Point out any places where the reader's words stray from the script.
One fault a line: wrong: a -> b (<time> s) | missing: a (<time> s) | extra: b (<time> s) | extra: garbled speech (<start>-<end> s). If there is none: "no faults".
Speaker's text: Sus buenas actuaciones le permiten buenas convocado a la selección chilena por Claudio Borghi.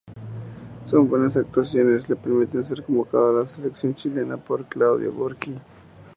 wrong: buenas -> ser (2.6 s)